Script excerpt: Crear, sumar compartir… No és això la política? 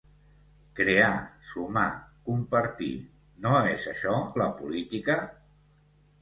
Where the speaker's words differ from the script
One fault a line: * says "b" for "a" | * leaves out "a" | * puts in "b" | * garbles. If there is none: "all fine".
all fine